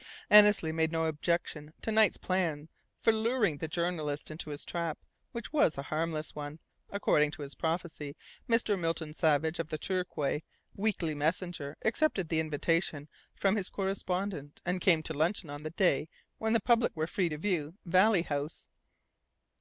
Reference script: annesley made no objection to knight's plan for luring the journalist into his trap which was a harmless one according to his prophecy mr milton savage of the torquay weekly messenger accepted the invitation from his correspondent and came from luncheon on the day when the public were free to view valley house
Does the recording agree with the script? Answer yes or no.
no